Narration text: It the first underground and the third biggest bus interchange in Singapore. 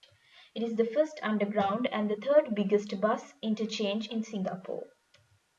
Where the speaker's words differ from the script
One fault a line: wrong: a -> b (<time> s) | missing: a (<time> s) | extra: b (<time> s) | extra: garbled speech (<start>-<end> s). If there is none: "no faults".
extra: is (0.6 s)